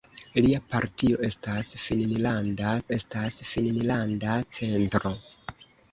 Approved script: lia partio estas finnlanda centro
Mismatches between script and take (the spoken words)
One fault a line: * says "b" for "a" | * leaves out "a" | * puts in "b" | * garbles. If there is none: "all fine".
* puts in "estas finnlanda"